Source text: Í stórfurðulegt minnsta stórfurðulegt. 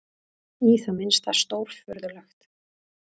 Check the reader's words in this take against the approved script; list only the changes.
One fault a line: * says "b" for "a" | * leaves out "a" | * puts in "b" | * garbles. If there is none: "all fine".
* says "það" for "stórfurðulegt"